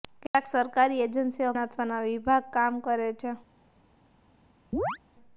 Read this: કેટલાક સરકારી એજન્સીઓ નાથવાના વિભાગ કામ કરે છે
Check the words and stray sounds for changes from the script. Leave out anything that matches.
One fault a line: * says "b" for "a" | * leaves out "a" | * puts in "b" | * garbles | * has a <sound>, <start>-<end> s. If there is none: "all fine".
* has a chirp, 4.7-5.0 s